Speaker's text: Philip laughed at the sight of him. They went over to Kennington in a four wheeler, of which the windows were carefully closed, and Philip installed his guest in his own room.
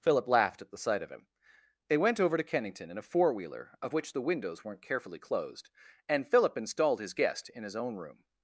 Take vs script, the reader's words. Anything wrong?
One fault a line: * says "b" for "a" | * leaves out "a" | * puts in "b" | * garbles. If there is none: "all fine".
* says "weren't" for "were"